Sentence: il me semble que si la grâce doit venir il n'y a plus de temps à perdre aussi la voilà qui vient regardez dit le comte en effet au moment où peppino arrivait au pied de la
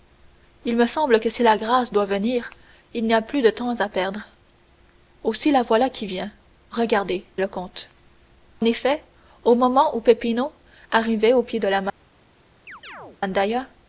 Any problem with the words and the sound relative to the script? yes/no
yes